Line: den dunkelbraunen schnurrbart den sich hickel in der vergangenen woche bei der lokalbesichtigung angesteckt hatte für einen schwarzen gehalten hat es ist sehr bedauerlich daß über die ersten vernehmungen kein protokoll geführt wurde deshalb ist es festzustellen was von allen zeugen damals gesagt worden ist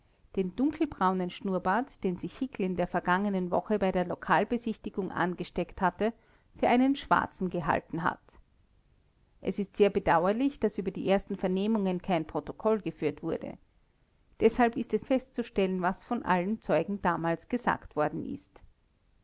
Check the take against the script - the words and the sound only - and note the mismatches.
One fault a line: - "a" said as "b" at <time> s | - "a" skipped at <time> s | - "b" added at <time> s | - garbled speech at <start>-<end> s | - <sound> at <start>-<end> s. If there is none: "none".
none